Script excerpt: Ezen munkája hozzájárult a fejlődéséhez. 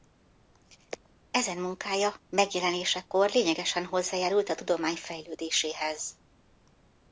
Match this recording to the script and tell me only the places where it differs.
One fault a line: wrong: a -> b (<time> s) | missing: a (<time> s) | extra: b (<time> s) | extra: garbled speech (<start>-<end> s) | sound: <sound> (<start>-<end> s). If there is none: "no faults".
extra: megjelenésekor lényegesen (2.3 s)
extra: tudomány (4.5 s)